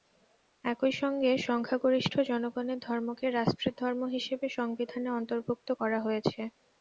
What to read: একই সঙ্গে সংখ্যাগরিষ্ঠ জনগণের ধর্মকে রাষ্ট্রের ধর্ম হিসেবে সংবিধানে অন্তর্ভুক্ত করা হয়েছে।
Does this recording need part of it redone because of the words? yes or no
no